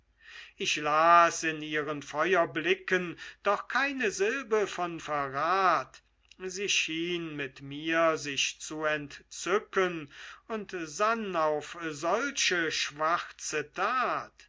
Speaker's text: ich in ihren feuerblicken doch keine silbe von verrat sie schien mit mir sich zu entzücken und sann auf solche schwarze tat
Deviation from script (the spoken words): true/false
true